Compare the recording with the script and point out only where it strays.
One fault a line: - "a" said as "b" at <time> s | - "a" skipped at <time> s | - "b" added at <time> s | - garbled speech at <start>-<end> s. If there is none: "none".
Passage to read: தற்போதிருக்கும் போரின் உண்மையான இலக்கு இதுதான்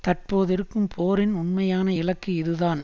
none